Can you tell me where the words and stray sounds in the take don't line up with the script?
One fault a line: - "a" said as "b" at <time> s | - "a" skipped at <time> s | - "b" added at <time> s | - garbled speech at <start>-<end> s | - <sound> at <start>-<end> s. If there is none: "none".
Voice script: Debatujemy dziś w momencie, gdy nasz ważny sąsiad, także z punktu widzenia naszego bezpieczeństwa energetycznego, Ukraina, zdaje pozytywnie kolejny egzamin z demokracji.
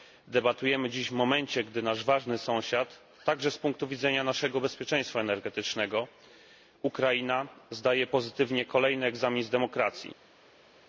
none